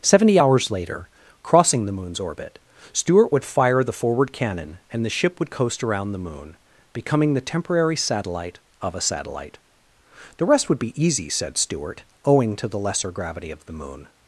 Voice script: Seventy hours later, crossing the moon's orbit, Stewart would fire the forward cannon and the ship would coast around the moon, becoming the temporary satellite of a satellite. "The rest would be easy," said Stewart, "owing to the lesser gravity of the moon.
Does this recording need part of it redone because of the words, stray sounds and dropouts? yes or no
no